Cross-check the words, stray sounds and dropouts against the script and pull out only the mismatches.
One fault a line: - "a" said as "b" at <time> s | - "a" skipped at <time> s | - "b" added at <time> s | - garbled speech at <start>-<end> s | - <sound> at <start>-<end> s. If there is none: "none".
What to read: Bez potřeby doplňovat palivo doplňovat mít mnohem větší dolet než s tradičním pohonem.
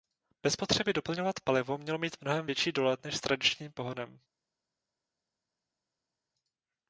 - "doplňovat" said as "mělo" at 1.8 s